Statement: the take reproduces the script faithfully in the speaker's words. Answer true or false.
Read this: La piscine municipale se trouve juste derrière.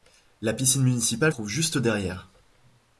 false